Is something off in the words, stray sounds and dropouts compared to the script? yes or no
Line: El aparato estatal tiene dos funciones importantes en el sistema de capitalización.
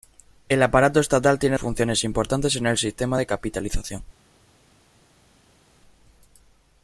yes